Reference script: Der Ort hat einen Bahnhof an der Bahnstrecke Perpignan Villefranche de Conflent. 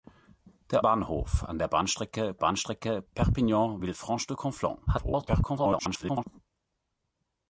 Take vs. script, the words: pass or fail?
fail